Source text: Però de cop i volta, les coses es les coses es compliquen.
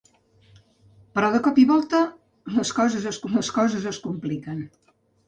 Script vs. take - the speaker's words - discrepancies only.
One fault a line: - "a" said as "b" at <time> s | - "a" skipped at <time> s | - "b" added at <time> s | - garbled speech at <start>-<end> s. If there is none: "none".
none